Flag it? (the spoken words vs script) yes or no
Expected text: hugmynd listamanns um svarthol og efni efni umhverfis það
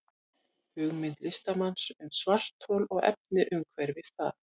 yes